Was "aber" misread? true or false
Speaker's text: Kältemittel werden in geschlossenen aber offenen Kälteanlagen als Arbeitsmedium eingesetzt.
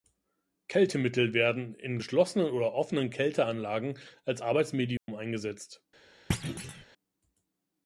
true